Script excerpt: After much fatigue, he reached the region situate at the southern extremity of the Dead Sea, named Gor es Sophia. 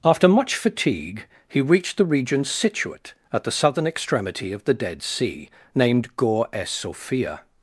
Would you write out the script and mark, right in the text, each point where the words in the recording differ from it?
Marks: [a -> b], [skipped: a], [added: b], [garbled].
After much fatigue, he reached the region situate at the southern extremity of the Dead Sea, named Gor es Sophia.